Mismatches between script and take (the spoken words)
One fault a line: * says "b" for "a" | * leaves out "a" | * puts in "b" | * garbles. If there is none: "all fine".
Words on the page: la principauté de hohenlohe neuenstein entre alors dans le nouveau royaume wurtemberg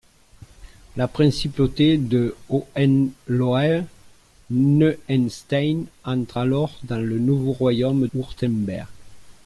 all fine